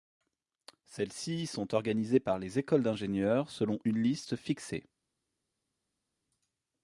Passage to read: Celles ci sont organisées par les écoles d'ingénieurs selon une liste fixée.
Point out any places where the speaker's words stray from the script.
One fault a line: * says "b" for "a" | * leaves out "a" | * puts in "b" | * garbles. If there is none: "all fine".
all fine